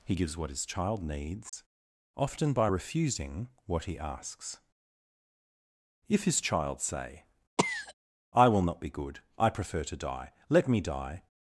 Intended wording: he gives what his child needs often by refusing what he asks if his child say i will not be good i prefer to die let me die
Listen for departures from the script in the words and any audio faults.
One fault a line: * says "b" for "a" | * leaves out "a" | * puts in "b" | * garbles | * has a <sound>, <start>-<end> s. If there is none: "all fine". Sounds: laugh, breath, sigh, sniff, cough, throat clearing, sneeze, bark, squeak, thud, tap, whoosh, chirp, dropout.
* has a dropout, 1.5-1.5 s
* has a cough, 7.6-7.9 s